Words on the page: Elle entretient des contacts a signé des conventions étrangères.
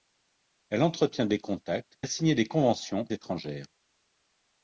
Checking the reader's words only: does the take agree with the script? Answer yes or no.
yes